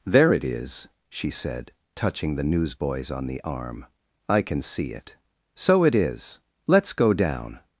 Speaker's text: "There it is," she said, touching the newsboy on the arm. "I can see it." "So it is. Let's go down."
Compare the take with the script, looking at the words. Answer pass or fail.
fail